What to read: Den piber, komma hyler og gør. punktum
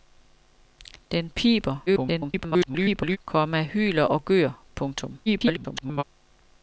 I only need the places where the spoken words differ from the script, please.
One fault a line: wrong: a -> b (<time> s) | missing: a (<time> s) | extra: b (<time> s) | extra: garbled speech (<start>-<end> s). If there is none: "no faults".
extra: garbled speech (1.9-3.2 s)
extra: garbled speech (5.3-6.0 s)